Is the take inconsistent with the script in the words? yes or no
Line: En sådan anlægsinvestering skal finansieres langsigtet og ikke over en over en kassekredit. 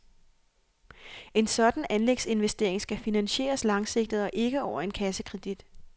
yes